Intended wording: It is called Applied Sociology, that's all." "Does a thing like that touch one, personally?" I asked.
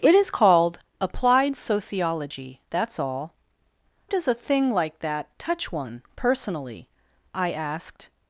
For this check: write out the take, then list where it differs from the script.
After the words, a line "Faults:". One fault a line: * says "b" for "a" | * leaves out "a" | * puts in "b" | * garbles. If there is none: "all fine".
It is called Applied Sociology, that's all." "Does a thing like that touch one, personally?" I asked.
Faults:
all fine